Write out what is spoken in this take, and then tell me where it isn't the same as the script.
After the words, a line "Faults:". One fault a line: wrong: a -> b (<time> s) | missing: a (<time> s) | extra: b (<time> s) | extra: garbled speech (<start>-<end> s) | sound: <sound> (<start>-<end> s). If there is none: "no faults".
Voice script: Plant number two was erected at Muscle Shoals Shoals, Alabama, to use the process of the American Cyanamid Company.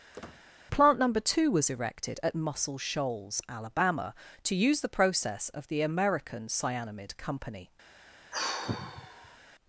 Plant number two was erected at Muscle Shoals, Alabama, to use the process of the American Cyanamid Company.
Faults:
sound: squeak (0.1-0.4 s)
missing: Shoals (3.4 s)
sound: sigh (8.3-9.4 s)